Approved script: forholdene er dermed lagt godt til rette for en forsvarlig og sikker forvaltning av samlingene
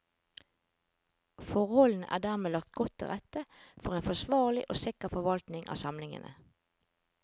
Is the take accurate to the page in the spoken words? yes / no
yes